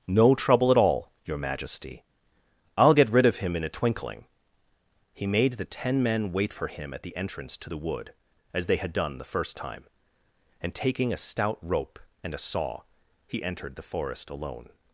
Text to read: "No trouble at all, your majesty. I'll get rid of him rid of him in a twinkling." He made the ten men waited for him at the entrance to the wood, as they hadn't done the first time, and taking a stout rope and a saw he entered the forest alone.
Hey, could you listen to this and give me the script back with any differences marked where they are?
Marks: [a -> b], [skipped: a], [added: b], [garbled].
"No trouble at all, your majesty. I'll get rid of him [skipped: rid of him] in a twinkling." He made the ten men [waited -> wait] for him at the entrance to the wood, as they [hadn't -> had] done the first time, and taking a stout rope and a saw he entered the forest alone.